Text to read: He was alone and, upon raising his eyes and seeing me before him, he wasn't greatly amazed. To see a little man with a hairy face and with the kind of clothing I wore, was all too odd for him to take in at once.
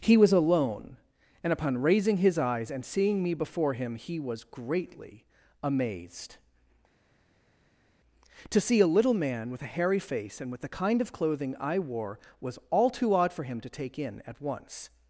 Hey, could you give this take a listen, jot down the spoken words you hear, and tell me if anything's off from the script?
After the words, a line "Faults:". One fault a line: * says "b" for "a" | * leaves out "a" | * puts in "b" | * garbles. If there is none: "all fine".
He was alone and, upon raising his eyes and seeing me before him, he was greatly amazed. To see a little man with a hairy face and with the kind of clothing I wore, was all too odd for him to take in at once.
Faults:
* says "was" for "wasn't"